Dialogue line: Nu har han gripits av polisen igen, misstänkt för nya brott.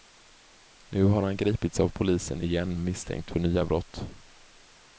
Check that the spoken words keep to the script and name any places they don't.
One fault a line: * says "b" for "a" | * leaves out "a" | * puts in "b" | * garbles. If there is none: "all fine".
all fine